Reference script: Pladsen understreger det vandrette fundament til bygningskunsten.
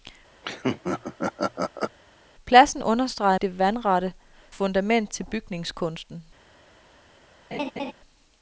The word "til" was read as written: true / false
true